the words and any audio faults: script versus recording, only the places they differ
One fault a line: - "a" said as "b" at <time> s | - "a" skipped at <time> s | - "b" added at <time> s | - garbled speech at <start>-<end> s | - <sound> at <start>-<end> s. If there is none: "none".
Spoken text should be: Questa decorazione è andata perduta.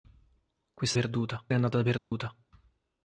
- "decorazione" said as "perduta" at 0.9 s
- dropout at 2.0-2.1 s